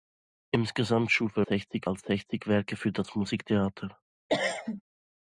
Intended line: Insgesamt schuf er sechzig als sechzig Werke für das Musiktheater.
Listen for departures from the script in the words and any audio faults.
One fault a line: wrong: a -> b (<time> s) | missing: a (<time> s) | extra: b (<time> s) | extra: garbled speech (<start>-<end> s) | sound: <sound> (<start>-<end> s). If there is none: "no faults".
sound: cough (4.3-4.8 s)